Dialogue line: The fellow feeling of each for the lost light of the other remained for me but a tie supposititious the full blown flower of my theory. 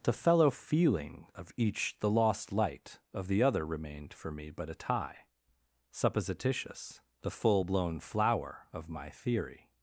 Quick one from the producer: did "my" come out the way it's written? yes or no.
yes